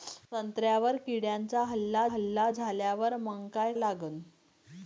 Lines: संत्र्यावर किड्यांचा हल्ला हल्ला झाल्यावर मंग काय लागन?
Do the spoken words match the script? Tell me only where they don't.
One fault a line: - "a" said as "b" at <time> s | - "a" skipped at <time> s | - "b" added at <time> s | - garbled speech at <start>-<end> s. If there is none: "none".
none